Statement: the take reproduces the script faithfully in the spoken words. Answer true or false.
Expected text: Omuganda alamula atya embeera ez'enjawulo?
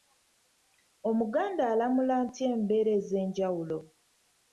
true